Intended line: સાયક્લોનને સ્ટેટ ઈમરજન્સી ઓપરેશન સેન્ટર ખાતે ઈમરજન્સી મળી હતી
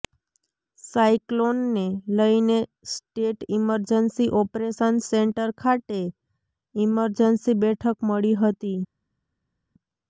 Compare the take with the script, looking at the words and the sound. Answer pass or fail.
fail